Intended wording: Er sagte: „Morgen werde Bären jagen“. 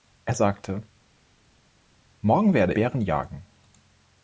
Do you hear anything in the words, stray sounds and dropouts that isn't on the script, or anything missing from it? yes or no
no